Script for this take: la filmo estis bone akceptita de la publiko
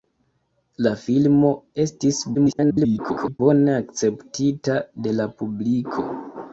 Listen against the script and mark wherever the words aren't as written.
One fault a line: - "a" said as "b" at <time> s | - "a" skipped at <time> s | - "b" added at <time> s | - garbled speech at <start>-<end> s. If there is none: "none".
- garbled speech at 2.3-3.4 s